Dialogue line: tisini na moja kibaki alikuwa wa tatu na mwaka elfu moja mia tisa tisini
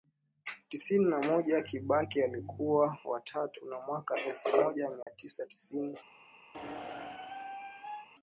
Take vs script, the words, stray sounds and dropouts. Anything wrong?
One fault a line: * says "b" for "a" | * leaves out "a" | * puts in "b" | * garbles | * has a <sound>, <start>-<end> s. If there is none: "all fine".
* has a dropout, 5.0-5.1 s
* has a squeak, 6.5-8.1 s